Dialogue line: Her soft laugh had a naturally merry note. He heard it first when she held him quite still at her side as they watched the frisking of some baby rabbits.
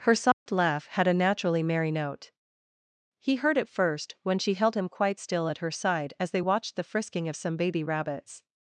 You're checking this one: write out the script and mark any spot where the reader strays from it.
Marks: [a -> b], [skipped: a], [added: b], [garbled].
Her soft laugh had a naturally merry note. He heard it first when she held him quite still at her side as they watched the frisking of some baby rabbits.